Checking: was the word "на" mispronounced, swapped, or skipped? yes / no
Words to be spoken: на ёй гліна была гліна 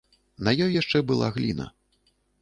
no